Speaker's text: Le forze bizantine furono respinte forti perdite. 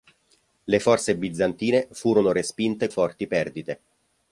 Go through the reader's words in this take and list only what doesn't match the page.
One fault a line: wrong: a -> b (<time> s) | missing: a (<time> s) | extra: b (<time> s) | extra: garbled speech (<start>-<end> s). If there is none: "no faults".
no faults